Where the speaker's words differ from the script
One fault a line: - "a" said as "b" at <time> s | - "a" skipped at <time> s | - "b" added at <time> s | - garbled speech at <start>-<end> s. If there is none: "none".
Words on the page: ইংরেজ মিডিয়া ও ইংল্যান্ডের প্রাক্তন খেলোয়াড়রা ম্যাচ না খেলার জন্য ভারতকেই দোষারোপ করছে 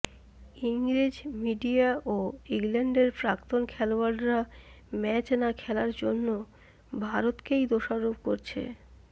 none